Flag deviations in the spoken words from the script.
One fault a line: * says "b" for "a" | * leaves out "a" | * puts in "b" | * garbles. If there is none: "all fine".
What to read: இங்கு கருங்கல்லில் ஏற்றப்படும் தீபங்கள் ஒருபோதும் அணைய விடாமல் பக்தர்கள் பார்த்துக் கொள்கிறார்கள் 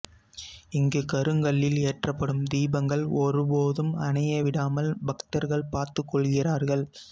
all fine